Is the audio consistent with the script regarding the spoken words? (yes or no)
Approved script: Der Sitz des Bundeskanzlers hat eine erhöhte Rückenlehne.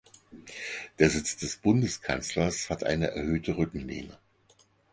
yes